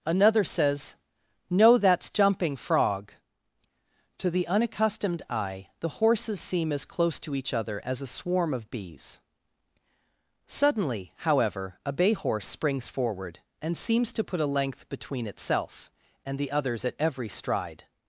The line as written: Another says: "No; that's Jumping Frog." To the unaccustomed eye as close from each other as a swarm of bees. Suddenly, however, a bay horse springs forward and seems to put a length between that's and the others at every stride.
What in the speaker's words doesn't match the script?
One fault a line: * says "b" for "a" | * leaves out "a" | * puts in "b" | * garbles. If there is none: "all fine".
* puts in "the horses seem"
* says "to" for "from"
* says "itself" for "that's"